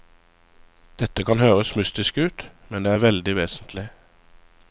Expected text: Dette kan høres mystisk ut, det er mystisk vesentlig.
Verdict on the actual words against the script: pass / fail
fail